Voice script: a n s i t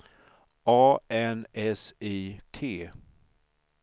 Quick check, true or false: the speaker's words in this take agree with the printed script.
true